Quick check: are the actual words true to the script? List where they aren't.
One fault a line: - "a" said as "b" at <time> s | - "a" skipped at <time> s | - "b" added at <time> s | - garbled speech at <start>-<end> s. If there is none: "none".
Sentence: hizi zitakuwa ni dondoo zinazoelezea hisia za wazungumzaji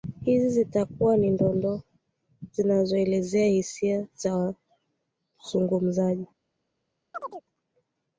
none